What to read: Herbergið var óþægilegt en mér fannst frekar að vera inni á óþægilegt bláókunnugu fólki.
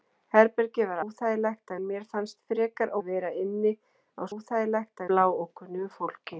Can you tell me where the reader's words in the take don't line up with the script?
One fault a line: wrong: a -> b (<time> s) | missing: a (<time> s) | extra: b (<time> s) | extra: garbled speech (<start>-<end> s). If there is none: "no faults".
no faults